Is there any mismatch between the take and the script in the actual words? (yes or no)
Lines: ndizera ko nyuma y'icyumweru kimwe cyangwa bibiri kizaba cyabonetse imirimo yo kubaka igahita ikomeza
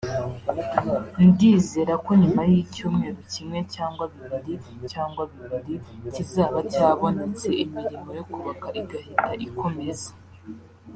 yes